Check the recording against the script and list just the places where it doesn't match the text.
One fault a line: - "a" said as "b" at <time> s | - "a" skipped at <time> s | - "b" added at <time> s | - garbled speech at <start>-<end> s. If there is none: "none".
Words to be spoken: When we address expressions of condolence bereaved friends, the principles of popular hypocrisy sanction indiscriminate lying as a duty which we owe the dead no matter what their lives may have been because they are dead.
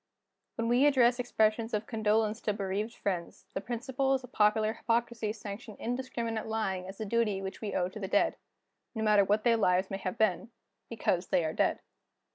- "to" added at 2.4 s
- "to" added at 7.9 s